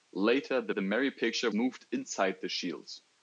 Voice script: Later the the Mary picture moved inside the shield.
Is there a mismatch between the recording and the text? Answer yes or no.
no